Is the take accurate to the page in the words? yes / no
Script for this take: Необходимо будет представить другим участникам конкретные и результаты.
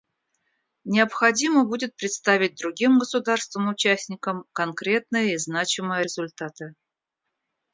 no